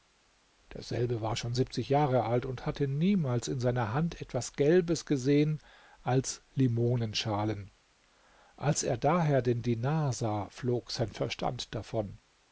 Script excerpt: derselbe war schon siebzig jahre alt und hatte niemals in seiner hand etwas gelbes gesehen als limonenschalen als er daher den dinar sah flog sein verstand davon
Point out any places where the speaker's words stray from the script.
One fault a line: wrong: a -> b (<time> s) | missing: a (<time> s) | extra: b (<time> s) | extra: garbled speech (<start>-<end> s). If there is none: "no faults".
no faults